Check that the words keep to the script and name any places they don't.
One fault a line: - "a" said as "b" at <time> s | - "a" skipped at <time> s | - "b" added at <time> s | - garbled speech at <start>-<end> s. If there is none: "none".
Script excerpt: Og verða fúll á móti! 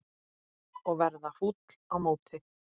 none